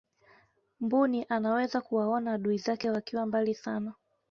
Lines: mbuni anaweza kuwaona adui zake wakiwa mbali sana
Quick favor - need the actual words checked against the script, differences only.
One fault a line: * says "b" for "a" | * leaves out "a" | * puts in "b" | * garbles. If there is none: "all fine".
all fine